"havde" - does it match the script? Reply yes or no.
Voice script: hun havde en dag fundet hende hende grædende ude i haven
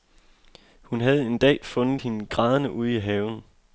yes